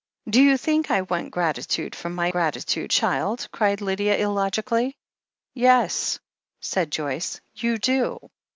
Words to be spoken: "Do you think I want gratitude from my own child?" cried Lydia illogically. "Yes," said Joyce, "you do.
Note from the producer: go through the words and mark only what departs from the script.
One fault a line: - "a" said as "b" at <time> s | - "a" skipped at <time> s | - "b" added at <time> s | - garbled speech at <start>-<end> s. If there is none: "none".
- "own" said as "gratitude" at 2.3 s